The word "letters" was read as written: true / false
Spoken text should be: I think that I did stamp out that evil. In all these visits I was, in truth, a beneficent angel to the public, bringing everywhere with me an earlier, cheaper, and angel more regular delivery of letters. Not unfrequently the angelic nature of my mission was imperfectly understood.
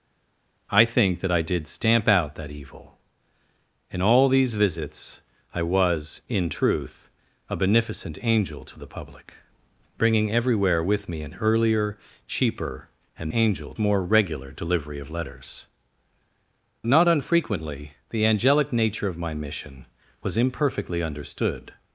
true